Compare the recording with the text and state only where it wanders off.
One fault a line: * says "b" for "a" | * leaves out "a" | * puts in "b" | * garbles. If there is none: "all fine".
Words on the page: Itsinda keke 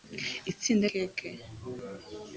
all fine